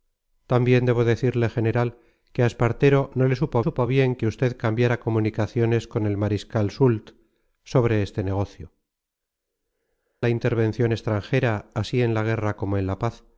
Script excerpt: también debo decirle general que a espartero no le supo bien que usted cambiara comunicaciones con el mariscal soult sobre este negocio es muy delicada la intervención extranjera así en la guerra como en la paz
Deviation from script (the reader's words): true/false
true